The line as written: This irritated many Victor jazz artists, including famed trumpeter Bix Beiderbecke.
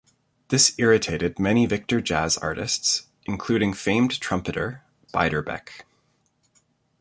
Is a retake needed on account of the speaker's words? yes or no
yes